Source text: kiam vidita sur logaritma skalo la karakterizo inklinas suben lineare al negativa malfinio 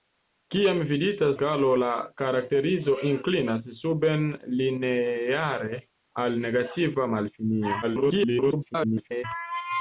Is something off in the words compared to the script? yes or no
yes